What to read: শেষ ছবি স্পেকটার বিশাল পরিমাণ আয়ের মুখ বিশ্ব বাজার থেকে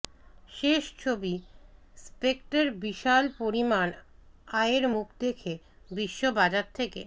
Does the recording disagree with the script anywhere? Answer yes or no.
yes